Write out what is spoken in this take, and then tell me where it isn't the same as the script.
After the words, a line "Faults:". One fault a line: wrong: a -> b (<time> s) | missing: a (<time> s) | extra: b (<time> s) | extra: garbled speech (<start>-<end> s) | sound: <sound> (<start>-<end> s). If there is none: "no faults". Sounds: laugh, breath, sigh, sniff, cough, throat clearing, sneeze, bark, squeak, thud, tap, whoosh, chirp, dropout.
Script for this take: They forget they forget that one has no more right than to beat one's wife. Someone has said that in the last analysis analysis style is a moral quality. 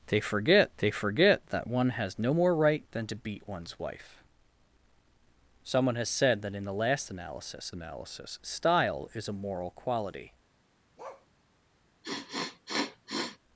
They forget they forget that one has no more right than to beat one's wife. Someone has said that in the last analysis analysis style is a moral quality.
Faults:
sound: bark (11.0-11.3 s)
sound: sniff (12.0-13.4 s)